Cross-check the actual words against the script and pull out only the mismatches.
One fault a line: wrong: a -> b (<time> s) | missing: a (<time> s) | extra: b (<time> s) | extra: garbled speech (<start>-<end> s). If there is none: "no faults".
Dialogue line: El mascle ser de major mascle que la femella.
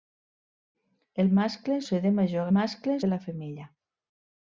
no faults